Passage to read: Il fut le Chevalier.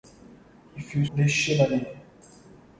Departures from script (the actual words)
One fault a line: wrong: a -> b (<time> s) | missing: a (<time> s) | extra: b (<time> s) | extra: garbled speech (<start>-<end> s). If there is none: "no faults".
no faults